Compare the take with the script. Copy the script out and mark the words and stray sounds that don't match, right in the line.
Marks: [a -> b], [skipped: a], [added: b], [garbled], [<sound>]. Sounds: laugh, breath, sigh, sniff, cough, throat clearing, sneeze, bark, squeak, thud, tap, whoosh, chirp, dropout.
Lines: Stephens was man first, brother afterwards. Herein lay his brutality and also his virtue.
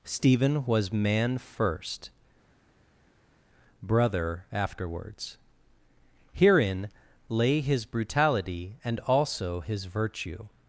[Stephens -> Stephen] was man first, brother afterwards. Herein lay his brutality and also his virtue.